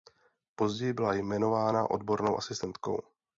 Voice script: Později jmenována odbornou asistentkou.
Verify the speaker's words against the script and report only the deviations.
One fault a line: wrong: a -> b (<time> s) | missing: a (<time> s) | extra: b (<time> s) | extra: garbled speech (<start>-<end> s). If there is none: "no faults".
extra: byla (0.9 s)